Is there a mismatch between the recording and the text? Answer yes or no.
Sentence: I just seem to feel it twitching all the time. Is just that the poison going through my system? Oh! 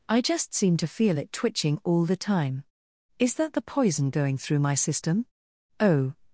yes